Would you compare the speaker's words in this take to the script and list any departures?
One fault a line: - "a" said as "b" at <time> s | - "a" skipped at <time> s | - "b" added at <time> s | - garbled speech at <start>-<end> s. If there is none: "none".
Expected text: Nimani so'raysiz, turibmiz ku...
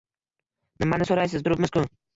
none